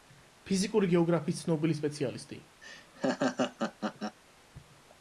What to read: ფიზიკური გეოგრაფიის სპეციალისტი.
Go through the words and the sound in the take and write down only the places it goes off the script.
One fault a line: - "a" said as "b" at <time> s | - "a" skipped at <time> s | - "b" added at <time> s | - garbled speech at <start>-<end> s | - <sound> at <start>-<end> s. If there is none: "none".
- "ცნობილი" added at 1.4 s
- laugh at 2.6-4.2 s